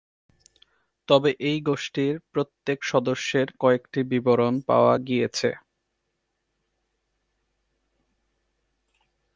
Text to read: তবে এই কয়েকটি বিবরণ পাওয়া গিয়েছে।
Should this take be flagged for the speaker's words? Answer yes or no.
yes